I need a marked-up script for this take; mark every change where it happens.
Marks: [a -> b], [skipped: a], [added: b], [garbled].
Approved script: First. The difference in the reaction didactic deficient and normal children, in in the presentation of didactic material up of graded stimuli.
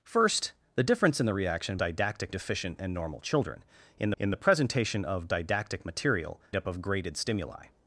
First. The difference in the reaction didactic deficient and normal children, in in the presentation of didactic material up of graded stimuli.